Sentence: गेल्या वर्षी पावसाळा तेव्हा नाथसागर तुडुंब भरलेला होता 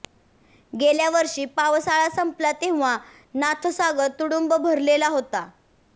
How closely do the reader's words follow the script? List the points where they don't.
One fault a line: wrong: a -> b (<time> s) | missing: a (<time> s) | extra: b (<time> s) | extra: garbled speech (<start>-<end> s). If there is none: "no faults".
extra: संपला (2.1 s)